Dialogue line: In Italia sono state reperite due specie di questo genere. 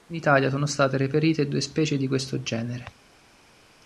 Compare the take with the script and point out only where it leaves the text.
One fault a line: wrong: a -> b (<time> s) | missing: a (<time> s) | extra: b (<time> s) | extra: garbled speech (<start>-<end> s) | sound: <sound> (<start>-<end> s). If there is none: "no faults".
no faults